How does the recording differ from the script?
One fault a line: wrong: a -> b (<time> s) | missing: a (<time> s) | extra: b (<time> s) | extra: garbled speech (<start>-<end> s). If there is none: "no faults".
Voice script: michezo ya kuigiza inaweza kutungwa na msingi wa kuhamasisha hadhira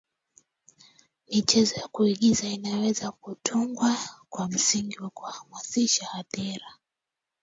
wrong: na -> kwa (4.3 s)